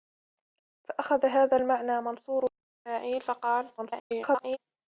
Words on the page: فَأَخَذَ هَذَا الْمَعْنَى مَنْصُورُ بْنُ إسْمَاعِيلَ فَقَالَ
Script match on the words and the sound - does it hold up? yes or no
no